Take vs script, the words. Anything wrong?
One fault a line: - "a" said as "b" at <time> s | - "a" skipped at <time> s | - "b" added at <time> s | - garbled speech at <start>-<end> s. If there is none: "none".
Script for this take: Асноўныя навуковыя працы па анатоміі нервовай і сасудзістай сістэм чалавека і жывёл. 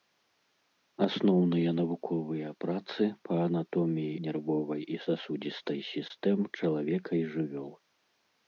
none